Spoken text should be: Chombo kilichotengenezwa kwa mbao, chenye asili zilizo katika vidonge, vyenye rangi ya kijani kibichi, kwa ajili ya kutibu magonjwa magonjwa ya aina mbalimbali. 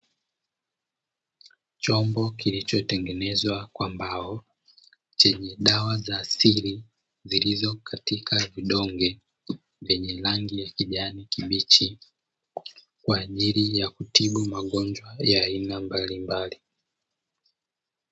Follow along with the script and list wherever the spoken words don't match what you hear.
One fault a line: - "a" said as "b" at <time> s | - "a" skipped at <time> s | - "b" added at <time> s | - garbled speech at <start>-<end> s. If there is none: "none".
- "dawa za" added at 5.6 s
- "magonjwa" skipped at 15.2 s